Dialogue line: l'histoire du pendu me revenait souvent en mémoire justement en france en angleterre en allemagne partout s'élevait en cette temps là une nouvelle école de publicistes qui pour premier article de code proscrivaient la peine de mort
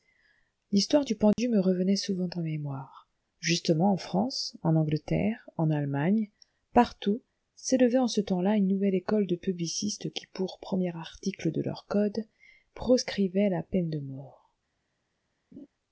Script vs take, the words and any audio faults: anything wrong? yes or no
yes